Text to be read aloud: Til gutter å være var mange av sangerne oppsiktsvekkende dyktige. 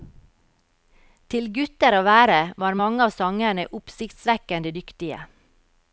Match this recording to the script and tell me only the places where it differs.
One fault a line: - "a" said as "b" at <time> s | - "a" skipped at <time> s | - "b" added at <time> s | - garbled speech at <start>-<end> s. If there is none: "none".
none